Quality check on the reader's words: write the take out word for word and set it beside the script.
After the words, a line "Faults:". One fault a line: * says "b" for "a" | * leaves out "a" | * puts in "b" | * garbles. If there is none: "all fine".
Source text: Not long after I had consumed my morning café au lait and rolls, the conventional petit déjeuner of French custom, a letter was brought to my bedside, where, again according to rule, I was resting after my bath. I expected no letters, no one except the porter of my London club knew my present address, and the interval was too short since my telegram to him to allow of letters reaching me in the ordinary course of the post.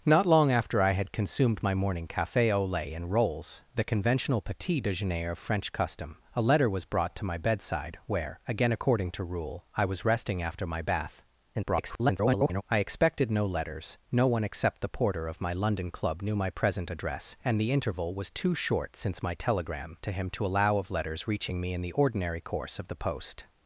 Not long after I had consumed my morning café au lait and rolls, the conventional petit déjeuner of French custom, a letter was brought to my bedside, where, again according to rule, I was resting after my bath. [garbled] I expected no letters, no one except the porter of my London club knew my present address, and the interval was too short since my telegram to him to allow of letters reaching me in the ordinary course of the post.
Faults:
* garbles